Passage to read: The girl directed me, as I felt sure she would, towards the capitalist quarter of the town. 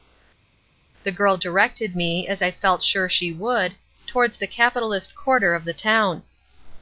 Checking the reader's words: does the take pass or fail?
pass